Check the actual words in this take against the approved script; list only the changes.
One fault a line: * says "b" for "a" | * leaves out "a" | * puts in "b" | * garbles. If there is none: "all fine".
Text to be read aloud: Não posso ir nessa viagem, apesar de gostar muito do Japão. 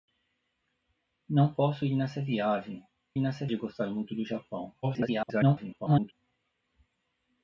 * says "nessa" for "apesar"
* garbles